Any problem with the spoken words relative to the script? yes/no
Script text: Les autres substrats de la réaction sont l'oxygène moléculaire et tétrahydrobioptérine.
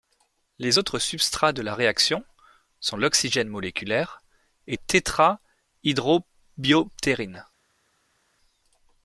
no